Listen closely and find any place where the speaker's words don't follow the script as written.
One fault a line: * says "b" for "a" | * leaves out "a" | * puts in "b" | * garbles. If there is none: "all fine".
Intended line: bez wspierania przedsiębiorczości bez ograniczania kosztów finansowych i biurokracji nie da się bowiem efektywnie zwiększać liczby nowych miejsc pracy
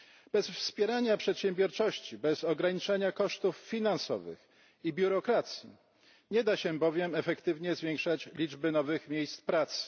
all fine